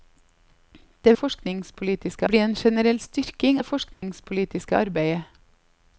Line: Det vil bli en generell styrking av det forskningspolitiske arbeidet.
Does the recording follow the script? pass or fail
fail